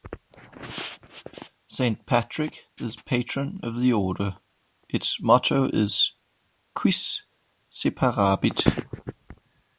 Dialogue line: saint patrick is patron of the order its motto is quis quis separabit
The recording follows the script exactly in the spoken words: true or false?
false